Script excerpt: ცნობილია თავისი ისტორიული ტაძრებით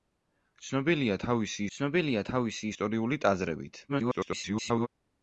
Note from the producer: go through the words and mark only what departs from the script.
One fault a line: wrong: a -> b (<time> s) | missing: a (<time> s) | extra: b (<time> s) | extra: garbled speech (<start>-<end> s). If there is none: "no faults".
extra: ცნობილია თავისი (1.8 s)
extra: garbled speech (3.9-4.9 s)